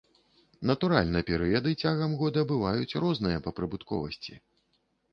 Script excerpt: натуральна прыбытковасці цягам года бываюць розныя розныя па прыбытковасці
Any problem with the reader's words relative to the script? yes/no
yes